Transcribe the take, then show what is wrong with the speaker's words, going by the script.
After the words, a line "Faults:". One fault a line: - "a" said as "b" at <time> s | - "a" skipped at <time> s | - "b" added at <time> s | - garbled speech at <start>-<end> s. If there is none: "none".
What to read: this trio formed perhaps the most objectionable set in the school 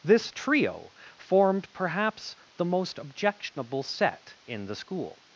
this trio formed perhaps the most objectionable set in the school
Faults:
none